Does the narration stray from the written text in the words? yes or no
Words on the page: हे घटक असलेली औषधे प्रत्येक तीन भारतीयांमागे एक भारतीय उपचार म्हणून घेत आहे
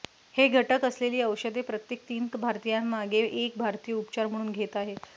no